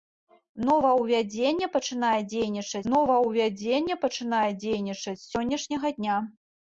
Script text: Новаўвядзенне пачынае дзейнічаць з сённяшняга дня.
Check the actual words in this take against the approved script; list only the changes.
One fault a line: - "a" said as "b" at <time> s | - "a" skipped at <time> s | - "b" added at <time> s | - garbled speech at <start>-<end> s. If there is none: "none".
- "новаўвядзенне пачынае дзейнічаць" added at 2.9 s